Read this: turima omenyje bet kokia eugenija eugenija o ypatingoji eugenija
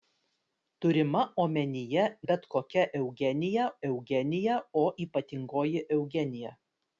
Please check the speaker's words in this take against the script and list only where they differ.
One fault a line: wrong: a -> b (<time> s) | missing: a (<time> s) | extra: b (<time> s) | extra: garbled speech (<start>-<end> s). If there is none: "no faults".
no faults